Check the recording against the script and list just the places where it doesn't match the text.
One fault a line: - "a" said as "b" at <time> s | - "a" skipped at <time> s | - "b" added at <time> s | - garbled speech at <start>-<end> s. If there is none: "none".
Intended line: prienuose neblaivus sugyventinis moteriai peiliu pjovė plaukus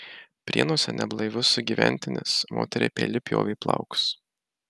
none